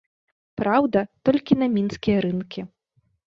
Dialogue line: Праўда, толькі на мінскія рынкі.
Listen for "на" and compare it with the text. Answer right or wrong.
right